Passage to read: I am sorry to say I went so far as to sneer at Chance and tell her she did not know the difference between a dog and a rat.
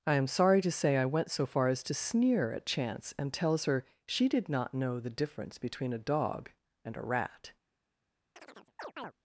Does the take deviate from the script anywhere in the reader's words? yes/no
yes